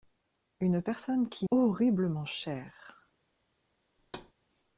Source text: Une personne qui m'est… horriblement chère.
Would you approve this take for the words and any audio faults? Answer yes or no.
no